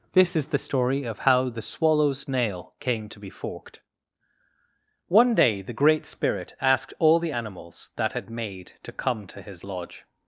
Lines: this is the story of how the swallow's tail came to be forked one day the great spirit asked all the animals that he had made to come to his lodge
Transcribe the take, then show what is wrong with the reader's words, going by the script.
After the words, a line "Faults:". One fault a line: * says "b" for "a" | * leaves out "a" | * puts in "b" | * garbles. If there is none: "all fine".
this is the story of how the swallow's nail came to be forked one day the great spirit asked all the animals that had made to come to his lodge
Faults:
* says "nail" for "tail"
* leaves out "he"